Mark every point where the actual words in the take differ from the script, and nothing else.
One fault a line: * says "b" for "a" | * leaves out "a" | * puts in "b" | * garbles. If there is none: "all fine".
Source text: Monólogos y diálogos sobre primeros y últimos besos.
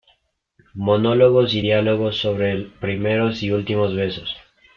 all fine